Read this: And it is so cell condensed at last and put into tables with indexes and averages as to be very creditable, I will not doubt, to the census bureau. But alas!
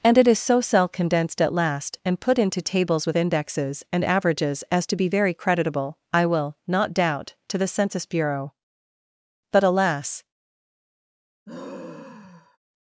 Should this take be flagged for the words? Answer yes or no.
no